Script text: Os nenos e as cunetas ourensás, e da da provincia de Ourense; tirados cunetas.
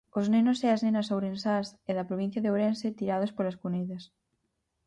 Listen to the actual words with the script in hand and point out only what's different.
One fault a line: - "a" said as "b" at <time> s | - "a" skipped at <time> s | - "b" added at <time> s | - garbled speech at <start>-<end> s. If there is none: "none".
- "cunetas" said as "nenas" at 0.8 s
- "da" skipped at 2.1 s
- "polas" added at 3.3 s